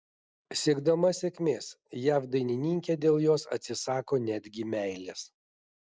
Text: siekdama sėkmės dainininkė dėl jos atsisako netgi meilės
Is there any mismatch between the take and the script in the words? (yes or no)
yes